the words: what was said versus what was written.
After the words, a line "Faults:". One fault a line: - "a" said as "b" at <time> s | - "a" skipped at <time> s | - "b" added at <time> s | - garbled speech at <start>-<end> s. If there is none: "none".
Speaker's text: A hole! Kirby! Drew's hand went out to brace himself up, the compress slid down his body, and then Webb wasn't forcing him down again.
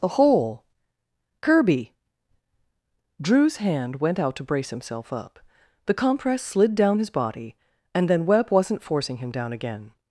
A hole! Kirby! Drew's hand went out to brace himself up, the compress slid down his body, and then Webb wasn't forcing him down again.
Faults:
none